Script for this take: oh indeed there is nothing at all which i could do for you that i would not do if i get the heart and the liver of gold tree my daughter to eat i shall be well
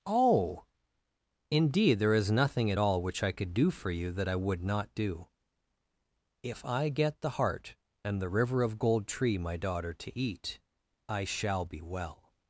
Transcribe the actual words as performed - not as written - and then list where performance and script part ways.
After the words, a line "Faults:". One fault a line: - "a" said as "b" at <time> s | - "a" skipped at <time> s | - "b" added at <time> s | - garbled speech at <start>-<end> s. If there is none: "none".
oh indeed there is nothing at all which i could do for you that i would not do if i get the heart and the river of gold tree my daughter to eat i shall be well
Faults:
- "liver" said as "river" at 8.3 s